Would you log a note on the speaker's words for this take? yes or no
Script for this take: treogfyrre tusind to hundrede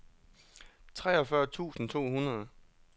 no